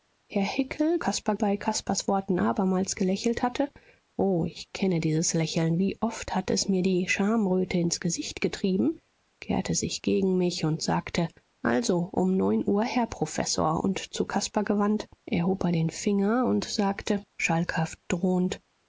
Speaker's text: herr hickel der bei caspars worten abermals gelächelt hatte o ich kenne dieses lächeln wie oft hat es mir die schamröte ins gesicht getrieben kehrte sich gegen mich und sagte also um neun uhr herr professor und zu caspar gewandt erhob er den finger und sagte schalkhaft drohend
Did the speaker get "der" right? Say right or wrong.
wrong